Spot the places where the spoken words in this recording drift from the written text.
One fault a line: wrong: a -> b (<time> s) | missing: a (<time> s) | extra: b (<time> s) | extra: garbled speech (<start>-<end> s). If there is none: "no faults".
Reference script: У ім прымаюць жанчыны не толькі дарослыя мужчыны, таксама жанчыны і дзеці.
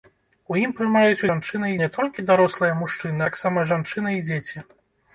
no faults